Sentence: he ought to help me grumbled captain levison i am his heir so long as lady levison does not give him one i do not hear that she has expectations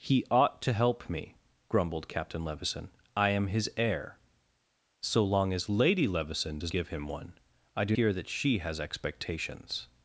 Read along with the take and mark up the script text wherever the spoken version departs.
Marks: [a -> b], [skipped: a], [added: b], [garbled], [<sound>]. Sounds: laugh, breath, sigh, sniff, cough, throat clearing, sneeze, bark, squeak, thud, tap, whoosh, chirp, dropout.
he ought to help me grumbled captain levison i am his heir so long as lady levison does [skipped: not] give him one i do [skipped: not] hear that she has expectations